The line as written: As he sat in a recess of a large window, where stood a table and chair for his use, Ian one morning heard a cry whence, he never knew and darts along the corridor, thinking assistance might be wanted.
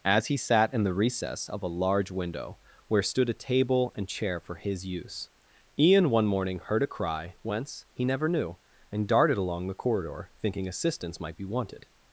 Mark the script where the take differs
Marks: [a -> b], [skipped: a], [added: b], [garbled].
As he sat in [a -> the] recess of a large window, where stood a table and chair for his use, Ian one morning heard a cry whence, he never knew and [darts -> darted] along the corridor, thinking assistance might be wanted.